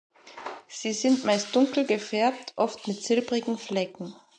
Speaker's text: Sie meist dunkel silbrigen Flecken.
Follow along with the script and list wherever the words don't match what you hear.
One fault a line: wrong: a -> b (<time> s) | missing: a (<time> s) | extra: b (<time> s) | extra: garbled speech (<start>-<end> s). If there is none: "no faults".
extra: sind (0.9 s)
extra: gefärbt oft mit (1.8 s)